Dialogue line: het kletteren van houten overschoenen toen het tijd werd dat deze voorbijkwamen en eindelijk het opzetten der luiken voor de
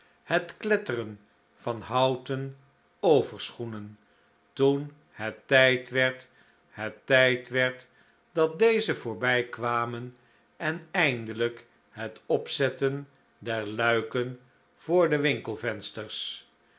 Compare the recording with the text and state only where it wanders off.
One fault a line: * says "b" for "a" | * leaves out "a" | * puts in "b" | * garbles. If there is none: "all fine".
* puts in "het tijd werd"